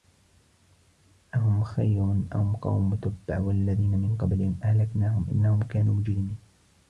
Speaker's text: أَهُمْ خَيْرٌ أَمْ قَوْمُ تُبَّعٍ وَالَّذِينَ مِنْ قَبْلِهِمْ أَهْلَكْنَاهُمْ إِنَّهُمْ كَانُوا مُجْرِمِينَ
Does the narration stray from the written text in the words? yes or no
no